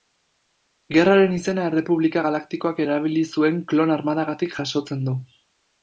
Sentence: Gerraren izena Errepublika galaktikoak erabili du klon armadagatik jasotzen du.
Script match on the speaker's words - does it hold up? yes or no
no